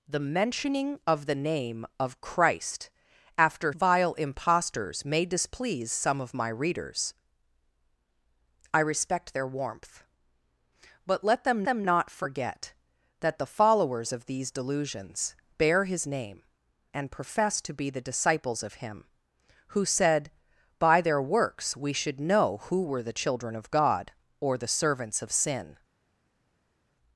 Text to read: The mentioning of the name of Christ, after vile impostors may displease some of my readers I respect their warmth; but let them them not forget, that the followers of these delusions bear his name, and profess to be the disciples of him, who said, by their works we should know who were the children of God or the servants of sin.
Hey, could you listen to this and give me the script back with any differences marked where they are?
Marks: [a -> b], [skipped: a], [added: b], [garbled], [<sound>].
The mentioning of the name of Christ, after vile impostors may displease some of my readers I respect their warmth; but let them them not forget, that the followers of these delusions bear his name, and profess to be the disciples of him, who said, by their works we should know who were the children of God or the servants of sin.